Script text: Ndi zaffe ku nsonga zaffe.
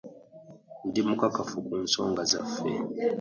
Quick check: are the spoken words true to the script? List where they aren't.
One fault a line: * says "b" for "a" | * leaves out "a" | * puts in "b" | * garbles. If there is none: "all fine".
* says "mukakafu" for "zaffe"